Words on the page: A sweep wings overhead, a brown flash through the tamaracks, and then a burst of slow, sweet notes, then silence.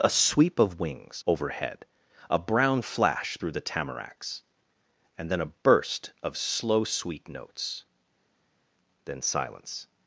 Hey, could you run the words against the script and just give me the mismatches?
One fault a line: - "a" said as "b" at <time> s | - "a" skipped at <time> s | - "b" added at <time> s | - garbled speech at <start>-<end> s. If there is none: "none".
- "of" added at 0.6 s